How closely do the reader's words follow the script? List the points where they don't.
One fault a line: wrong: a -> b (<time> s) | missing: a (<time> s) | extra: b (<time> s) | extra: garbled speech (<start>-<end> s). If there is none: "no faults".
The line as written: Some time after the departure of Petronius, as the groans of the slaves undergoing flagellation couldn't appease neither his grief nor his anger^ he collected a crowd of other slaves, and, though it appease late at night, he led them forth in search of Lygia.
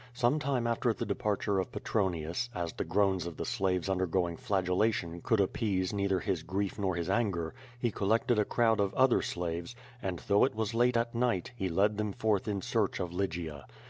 wrong: couldn't -> could (5.2 s)
wrong: appease -> was (10.6 s)